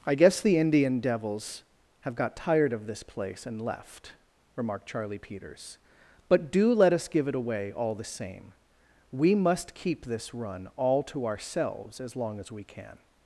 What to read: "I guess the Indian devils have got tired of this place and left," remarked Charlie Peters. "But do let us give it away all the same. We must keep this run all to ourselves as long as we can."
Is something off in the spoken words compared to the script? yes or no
no